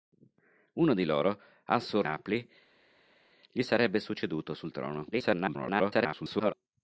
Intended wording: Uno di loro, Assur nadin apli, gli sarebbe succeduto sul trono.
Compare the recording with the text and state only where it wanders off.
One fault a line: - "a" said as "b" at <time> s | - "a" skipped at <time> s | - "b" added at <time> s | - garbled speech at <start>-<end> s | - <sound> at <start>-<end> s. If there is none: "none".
- "nadin" skipped at 2.1 s
- garbled speech at 5.1-6.5 s